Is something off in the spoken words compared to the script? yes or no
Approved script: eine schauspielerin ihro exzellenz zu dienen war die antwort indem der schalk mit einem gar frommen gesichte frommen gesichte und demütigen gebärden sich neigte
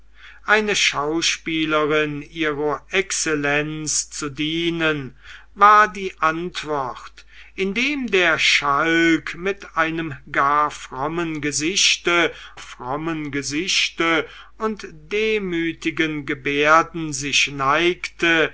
no